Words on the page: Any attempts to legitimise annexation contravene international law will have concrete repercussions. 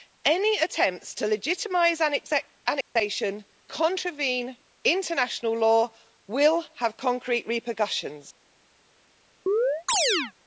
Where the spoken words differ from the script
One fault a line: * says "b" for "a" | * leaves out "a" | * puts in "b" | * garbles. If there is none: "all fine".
all fine